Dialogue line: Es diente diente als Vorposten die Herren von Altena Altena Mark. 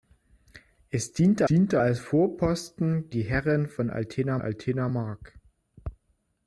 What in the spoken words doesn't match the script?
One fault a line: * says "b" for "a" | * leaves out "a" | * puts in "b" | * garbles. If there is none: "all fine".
all fine